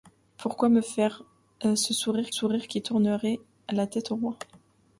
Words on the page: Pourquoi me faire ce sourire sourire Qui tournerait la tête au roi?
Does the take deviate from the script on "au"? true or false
false